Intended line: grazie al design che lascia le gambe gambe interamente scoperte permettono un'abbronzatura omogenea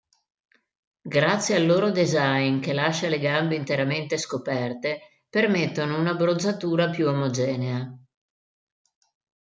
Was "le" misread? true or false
false